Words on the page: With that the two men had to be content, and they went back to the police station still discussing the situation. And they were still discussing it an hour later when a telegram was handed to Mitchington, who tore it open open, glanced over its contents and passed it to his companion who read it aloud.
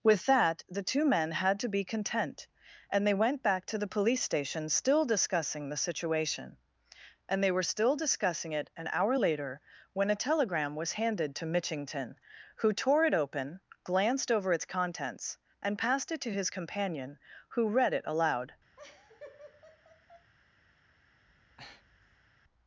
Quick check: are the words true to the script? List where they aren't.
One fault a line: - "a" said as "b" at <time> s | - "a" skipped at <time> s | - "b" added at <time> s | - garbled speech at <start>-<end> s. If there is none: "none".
- "open" skipped at 13.6 s